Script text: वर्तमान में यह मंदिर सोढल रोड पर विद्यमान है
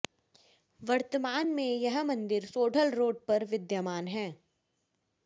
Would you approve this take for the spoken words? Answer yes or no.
yes